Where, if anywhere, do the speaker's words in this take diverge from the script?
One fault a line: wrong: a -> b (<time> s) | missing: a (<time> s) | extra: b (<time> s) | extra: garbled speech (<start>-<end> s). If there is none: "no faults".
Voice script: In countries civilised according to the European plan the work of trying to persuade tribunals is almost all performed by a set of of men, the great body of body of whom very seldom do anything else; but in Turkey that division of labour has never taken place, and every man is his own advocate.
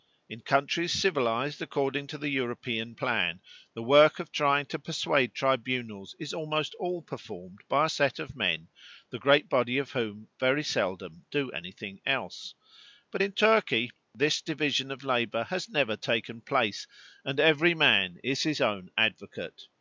missing: of (8.4 s)
missing: body of (9.9 s)
wrong: that -> this (14.1 s)